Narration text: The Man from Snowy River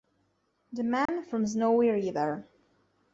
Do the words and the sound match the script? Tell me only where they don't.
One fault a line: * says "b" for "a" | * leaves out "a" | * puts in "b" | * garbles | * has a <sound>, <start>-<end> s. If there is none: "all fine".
* has a dropout, 1.1-1.1 s